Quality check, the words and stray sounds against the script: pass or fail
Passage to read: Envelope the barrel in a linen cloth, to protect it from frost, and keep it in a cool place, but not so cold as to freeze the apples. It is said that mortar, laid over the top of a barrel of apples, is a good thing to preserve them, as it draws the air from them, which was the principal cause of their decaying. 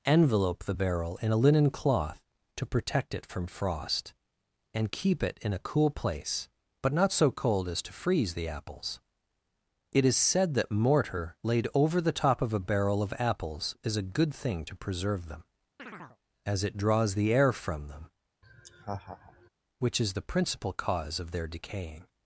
fail